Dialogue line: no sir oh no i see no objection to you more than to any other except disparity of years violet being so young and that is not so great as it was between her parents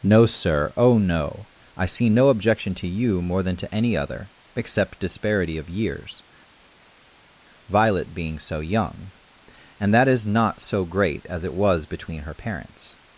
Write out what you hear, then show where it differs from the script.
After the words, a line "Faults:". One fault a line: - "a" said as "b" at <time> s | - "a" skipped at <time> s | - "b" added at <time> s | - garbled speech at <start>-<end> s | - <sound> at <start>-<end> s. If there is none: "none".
no sir oh no i see no objection to you more than to any other except disparity of years violet being so young and that is not so great as it was between her parents
Faults:
none